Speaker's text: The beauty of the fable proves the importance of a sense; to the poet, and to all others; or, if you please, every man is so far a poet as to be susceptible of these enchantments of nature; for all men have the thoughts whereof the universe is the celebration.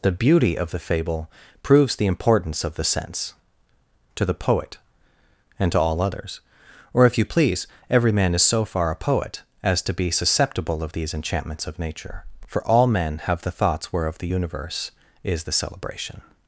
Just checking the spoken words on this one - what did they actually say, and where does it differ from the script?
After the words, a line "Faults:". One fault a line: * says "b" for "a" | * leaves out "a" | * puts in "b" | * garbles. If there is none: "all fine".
The beauty of the fable proves the importance of the sense; to the poet, and to all others; or, if you please, every man is so far a poet as to be susceptible of these enchantments of nature; for all men have the thoughts whereof the universe is the celebration.
Faults:
* says "the" for "a"